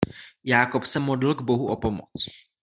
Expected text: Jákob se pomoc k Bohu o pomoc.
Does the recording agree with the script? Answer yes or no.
no